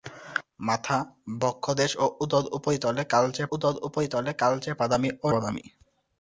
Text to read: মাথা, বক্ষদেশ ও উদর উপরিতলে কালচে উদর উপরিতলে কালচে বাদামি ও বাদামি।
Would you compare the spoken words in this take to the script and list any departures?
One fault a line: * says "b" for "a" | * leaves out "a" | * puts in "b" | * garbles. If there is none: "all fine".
all fine